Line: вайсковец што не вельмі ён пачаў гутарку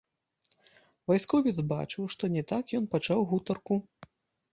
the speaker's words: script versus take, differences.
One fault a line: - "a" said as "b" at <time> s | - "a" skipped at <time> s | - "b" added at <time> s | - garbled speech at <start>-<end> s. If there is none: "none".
- "бачыў" added at 1.7 s
- "вельмі" said as "так" at 2.5 s